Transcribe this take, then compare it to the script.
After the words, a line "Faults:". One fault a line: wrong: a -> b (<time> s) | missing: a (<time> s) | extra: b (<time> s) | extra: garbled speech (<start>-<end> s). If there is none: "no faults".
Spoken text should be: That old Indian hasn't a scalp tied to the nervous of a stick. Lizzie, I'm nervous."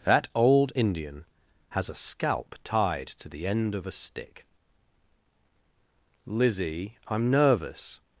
That old Indian has a scalp tied to the end of a stick. Lizzie, I'm nervous."
Faults:
wrong: hasn't -> has (1.7 s)
wrong: nervous -> end (3.5 s)